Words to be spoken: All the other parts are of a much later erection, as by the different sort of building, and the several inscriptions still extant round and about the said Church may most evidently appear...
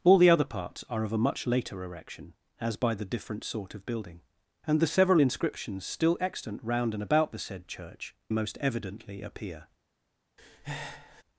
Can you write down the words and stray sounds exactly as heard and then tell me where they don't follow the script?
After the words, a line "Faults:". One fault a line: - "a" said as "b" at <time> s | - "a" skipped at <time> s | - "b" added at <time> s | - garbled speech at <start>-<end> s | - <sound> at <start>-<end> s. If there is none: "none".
All the other parts are of a much later erection, as by the different sort of building, and the several inscriptions still extant round and about the said Church most evidently appear...
Faults:
- "may" skipped at 8.2 s
- breath at 10.4-11.2 s